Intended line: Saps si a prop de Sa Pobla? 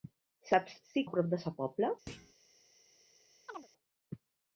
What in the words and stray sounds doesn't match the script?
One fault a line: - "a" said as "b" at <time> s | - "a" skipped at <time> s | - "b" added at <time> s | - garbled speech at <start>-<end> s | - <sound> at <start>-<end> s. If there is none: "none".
- thud at 2.1-2.3 s
- chirp at 3.5-3.7 s